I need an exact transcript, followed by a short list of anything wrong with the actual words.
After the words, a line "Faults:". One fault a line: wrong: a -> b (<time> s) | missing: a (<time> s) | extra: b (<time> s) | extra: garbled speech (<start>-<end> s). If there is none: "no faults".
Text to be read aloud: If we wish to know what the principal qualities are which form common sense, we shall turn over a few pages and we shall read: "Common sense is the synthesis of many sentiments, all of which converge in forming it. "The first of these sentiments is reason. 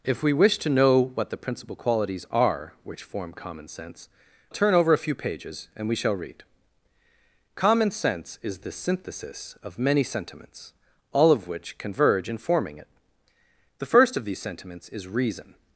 If we wish to know what the principal qualities are which form common sense, turn over a few pages and we shall read: "Common sense is the synthesis of many sentiments, all of which converge in forming it. "The first of these sentiments is reason.
Faults:
missing: we shall (4.1 s)